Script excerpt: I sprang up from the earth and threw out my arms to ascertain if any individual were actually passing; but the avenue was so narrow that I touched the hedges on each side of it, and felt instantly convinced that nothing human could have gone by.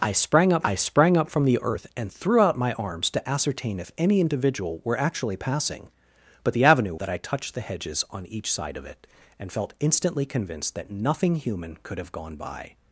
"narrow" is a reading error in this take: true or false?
true